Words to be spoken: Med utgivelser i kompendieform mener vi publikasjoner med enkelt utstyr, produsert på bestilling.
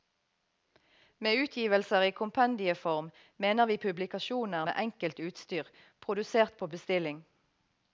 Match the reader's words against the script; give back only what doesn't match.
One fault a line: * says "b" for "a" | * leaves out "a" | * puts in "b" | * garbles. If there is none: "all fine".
all fine